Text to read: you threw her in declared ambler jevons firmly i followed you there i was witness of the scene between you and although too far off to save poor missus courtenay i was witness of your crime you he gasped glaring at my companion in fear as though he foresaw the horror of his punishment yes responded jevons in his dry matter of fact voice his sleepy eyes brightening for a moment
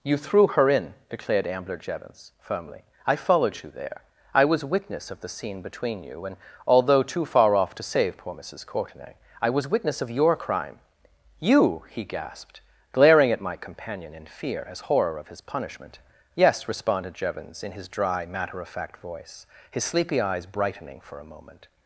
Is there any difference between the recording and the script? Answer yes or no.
yes